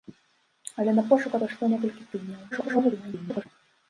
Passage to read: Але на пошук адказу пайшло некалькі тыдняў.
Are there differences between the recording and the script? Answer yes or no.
yes